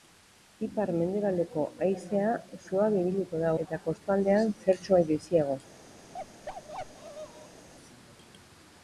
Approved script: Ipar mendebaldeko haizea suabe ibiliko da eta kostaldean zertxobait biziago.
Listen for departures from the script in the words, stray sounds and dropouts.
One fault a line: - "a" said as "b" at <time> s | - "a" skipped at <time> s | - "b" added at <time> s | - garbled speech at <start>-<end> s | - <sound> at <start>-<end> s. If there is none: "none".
- bark at 6.1-7.7 s